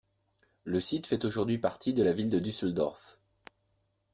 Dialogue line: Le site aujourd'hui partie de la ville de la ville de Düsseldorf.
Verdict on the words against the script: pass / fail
fail